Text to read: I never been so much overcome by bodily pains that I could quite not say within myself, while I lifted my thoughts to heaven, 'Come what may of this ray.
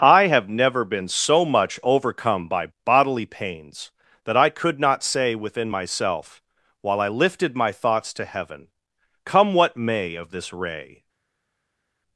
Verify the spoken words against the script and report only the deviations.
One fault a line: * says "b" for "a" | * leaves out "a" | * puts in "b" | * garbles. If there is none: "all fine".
* puts in "have"
* leaves out "quite"